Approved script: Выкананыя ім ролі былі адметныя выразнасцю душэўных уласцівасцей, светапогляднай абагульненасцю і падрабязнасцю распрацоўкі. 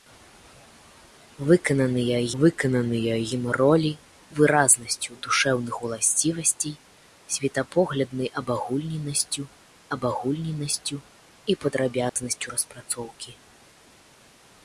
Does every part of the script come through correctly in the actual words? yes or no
no